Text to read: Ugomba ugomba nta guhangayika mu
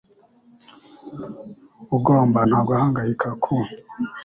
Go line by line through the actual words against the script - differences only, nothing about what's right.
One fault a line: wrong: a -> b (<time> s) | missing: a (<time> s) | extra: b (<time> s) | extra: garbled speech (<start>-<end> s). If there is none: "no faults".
missing: ugomba (2.4 s)
wrong: mu -> ku (3.4 s)